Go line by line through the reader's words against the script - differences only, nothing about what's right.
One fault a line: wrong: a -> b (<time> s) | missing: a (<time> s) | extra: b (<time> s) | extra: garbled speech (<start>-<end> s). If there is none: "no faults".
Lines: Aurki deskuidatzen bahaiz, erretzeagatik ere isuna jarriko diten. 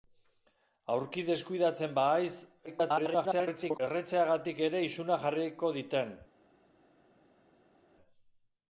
extra: garbled speech (2.7-3.8 s)